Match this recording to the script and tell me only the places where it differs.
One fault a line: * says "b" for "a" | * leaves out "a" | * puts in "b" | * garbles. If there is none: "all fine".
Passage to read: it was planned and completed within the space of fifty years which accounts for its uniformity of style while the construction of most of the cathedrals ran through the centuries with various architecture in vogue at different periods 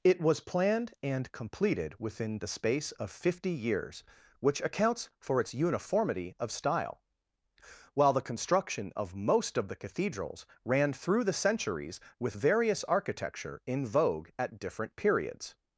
all fine